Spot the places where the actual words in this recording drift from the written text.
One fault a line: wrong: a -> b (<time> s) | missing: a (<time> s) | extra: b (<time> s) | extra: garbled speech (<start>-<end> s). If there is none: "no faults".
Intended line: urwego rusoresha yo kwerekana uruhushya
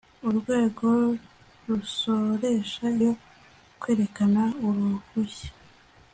no faults